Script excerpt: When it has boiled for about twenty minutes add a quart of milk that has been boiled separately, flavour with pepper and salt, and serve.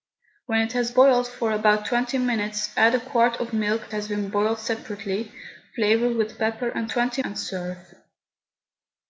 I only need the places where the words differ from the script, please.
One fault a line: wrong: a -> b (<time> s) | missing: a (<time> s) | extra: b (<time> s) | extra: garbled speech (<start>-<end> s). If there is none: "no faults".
missing: that (3.9 s)
wrong: salt -> twenty (6.9 s)